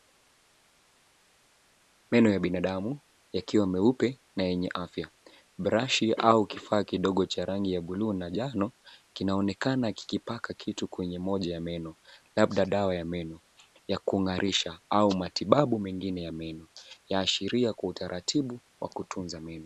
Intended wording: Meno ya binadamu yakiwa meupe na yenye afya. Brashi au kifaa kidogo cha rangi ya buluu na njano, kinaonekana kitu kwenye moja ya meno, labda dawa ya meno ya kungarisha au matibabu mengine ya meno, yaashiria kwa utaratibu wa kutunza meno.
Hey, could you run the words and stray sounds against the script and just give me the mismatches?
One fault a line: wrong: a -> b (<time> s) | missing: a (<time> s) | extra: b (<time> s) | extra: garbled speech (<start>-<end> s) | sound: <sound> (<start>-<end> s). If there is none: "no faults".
extra: kikipaka (9.9 s)